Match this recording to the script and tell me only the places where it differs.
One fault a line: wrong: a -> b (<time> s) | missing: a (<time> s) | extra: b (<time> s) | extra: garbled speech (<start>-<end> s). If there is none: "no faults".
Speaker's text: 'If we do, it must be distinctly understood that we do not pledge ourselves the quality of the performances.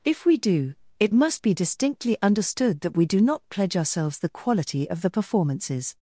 no faults